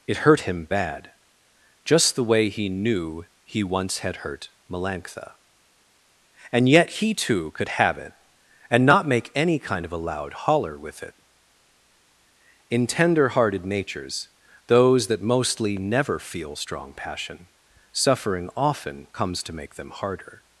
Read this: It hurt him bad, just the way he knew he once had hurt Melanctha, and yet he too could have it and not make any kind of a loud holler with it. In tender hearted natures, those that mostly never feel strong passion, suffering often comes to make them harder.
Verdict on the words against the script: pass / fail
pass